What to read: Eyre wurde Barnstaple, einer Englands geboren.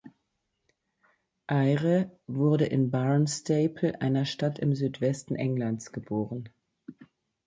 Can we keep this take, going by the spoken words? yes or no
no